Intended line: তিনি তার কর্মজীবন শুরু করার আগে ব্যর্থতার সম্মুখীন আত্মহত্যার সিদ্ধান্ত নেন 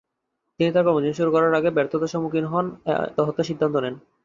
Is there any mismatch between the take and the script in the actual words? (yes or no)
no